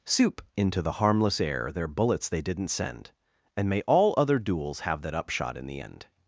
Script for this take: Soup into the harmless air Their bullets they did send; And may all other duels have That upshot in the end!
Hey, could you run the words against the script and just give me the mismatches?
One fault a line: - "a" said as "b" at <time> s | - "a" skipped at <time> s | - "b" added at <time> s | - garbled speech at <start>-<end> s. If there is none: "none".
- "did" said as "didn't" at 2.4 s